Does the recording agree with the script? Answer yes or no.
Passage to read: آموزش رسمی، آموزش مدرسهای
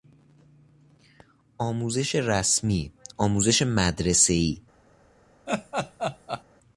yes